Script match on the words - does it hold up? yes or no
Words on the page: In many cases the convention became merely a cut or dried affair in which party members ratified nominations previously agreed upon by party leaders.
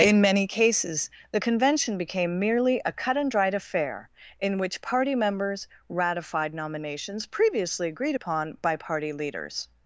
no